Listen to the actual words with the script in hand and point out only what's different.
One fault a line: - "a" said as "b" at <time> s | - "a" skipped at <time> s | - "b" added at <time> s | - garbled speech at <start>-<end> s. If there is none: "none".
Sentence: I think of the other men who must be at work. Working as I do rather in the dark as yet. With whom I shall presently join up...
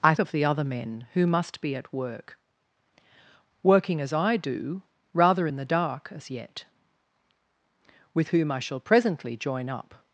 - "think" skipped at 0.1 s